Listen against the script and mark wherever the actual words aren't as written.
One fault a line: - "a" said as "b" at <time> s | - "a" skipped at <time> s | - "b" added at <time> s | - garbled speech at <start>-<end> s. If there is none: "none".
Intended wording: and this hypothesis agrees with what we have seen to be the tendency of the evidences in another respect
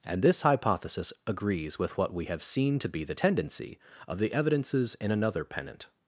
- "respect" said as "pennant" at 5.4 s